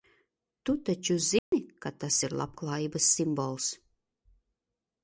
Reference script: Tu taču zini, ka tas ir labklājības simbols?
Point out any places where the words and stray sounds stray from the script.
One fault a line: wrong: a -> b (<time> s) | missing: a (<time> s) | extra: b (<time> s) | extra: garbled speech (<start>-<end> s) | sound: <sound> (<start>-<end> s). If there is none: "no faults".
sound: dropout (1.4-1.5 s)